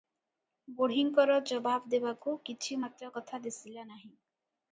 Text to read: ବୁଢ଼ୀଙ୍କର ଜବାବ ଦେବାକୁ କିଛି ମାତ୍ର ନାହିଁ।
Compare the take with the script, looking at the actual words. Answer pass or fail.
fail